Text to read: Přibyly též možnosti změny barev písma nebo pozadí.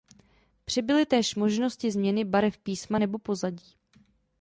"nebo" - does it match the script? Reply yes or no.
yes